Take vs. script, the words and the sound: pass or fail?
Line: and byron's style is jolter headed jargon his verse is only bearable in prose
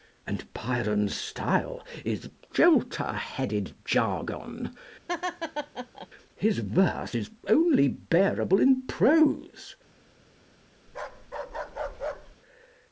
fail